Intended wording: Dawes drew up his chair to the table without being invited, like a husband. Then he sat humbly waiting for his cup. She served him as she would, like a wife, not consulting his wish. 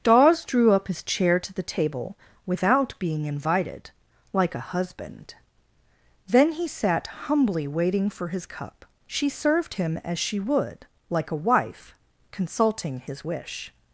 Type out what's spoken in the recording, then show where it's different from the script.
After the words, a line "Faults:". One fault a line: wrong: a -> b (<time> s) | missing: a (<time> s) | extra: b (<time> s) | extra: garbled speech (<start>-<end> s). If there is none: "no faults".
Dawes drew up his chair to the table without being invited, like a husband. Then he sat humbly waiting for his cup. She served him as she would, like a wife, consulting his wish.
Faults:
missing: not (11.9 s)